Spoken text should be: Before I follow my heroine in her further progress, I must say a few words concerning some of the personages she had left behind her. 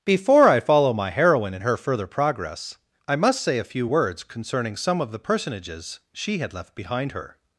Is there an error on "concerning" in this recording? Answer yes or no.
no